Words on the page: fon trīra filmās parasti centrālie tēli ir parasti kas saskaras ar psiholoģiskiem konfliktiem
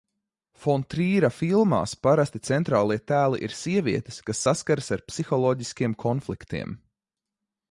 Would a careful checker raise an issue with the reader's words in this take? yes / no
yes